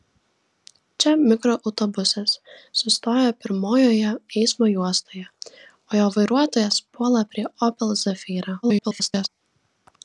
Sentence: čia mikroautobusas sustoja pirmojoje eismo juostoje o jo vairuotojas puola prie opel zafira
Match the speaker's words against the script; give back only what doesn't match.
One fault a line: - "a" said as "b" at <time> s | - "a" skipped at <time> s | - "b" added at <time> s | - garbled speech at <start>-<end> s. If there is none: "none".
- garbled speech at 8.6-9.3 s